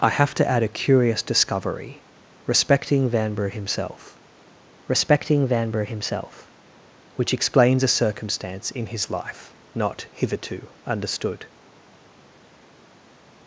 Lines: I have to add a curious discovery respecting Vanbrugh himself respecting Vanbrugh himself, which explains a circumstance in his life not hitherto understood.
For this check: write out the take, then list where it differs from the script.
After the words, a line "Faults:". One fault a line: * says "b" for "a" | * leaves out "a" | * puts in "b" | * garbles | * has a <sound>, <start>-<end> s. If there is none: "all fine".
I have to add a curious discovery respecting Vanbrugh himself respecting Vanbrugh himself, which explains a circumstance in his life not hitherto understood.
Faults:
all fine